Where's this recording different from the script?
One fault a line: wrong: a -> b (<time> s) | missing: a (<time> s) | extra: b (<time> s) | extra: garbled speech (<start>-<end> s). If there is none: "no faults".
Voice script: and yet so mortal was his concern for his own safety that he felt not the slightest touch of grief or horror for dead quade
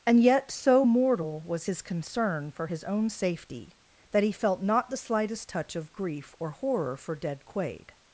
no faults